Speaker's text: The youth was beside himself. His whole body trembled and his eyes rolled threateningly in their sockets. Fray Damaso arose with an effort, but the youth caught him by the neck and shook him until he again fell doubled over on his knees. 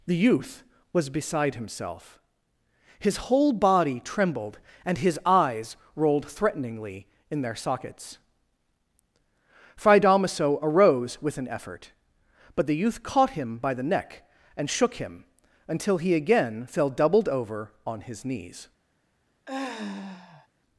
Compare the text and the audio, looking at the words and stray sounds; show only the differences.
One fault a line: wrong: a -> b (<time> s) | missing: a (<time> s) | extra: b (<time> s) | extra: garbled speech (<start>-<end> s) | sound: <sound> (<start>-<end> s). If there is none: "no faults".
sound: sigh (19.5-20.5 s)